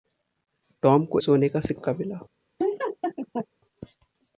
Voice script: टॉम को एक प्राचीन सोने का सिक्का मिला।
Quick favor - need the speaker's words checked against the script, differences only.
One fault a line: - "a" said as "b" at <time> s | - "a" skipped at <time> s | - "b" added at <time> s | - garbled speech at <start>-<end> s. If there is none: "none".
- "एक प्राचीन" skipped at 1.2 s